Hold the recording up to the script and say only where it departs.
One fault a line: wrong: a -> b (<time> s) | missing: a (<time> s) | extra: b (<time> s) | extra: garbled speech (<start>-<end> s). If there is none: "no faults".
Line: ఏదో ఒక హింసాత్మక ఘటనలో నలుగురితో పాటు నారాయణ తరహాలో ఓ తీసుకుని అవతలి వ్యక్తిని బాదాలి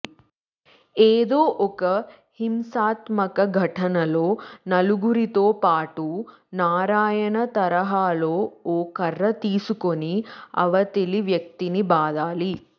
extra: కర్ర (9.0 s)